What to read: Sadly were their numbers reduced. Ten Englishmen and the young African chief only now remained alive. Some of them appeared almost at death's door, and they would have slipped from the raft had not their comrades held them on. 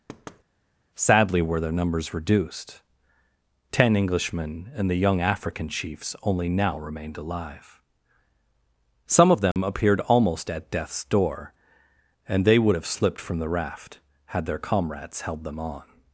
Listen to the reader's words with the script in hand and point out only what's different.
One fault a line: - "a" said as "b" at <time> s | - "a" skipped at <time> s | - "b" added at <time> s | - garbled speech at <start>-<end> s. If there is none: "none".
- "chief" said as "chiefs" at 5.7 s
- "not" skipped at 14.5 s